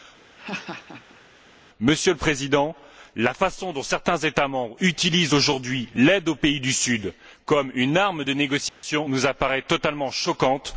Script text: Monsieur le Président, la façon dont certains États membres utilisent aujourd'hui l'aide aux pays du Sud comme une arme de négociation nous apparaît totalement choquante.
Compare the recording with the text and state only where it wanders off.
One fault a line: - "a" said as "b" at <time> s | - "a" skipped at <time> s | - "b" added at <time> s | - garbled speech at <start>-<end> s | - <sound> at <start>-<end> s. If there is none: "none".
- laugh at 0.3-1.2 s
- dropout at 8.7-8.8 s